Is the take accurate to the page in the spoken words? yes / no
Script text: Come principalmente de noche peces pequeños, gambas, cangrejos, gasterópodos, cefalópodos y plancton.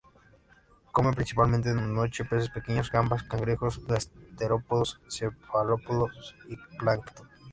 yes